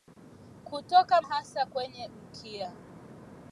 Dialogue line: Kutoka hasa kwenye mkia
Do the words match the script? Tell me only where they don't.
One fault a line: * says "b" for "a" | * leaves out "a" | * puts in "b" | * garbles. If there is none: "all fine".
all fine